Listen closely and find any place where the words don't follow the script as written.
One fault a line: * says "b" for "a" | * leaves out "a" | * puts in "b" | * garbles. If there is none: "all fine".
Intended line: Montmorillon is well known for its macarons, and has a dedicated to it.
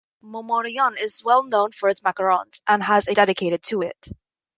all fine